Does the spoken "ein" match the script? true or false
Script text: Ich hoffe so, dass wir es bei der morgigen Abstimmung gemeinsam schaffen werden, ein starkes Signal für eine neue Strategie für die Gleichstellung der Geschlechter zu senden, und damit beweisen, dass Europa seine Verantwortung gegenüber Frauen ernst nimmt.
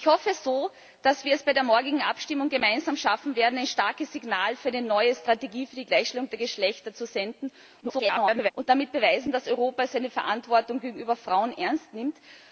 true